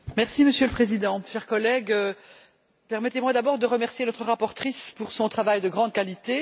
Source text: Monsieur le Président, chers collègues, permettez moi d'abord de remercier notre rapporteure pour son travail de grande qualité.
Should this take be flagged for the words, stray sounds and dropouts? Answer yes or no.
no